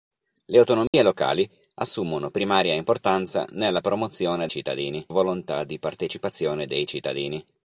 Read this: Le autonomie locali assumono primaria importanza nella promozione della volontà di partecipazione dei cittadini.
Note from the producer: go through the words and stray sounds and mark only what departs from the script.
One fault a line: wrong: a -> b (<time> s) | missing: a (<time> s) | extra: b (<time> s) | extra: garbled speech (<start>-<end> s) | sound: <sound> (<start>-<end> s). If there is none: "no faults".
sound: dropout (0.9-0.9 s)
wrong: della -> cittadini (4.5 s)